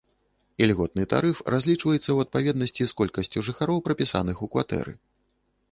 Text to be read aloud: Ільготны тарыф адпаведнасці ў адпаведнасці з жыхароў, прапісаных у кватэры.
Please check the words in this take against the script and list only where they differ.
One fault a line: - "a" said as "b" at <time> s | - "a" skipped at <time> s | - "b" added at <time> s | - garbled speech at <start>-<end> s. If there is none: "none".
- "адпаведнасці" said as "разлічваецца" at 1.6 s
- "колькасцю" added at 3.0 s